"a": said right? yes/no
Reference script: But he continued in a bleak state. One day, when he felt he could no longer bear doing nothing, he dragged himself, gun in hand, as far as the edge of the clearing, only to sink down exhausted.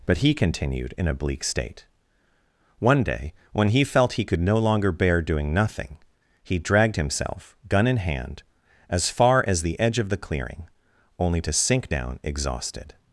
yes